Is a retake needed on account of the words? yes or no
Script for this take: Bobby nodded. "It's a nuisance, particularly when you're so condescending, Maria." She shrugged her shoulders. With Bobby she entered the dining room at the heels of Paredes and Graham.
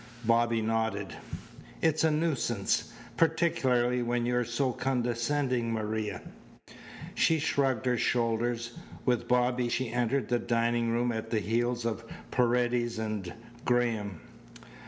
no